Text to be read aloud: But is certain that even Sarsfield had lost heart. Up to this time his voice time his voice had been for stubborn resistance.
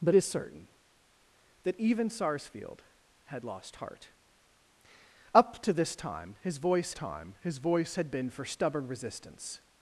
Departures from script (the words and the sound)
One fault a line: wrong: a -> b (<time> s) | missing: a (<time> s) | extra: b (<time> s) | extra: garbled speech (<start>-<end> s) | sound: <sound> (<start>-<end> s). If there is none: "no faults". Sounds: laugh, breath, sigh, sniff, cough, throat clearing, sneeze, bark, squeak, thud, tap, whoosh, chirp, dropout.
no faults